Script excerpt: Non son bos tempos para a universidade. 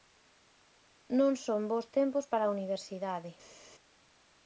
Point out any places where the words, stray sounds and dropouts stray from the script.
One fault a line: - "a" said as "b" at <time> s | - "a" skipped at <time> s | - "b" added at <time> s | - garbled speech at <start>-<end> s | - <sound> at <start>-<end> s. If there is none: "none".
none